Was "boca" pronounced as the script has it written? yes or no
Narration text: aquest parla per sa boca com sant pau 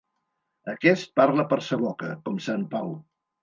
yes